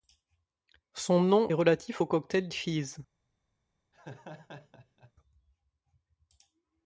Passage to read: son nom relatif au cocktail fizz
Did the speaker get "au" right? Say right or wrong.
right